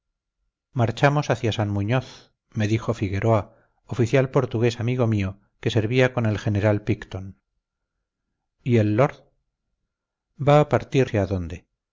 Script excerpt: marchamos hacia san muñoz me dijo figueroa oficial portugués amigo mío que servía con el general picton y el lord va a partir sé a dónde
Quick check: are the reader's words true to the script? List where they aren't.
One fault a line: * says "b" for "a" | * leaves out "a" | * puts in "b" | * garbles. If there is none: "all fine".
all fine